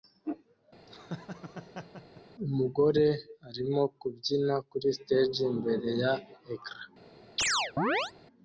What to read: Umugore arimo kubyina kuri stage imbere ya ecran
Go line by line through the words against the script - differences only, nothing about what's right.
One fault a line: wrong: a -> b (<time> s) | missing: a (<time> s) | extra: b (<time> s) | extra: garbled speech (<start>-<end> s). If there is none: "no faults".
no faults